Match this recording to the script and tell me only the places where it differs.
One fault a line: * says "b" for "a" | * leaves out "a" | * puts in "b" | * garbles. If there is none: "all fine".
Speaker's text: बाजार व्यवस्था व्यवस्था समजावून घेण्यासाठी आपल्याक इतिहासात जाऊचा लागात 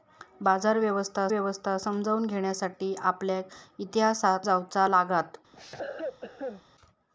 all fine